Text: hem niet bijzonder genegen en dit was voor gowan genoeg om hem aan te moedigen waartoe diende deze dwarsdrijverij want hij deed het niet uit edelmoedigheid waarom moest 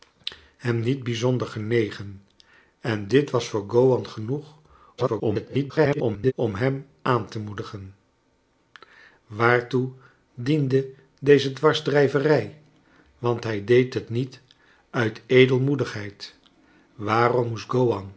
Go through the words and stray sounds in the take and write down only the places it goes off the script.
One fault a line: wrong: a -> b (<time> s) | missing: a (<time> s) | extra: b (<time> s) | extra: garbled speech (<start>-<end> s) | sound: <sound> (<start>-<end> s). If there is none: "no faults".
extra: garbled speech (5.0-6.3 s)